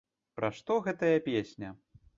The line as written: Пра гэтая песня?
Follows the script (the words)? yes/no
no